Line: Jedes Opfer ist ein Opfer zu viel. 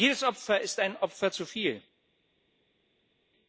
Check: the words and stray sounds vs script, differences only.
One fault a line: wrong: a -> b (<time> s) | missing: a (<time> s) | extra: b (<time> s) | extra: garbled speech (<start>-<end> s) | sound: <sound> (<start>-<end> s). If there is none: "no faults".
no faults